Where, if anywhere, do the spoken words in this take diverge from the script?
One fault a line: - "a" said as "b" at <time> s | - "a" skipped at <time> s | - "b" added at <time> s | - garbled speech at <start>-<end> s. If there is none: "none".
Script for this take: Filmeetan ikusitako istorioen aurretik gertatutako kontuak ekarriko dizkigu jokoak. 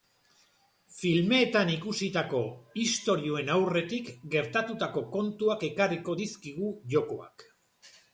none